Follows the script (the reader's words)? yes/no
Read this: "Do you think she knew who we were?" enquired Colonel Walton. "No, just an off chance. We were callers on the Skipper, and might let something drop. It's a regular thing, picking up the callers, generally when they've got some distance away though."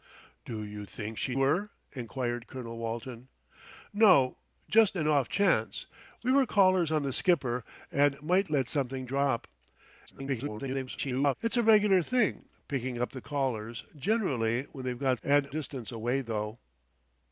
no